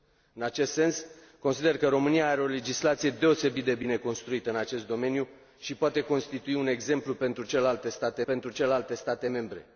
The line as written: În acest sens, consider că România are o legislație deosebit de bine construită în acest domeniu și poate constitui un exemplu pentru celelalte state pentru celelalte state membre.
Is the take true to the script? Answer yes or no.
yes